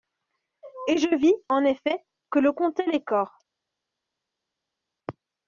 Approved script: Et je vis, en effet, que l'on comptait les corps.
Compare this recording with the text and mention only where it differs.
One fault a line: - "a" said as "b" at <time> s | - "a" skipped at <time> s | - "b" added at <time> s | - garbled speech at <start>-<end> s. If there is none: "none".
none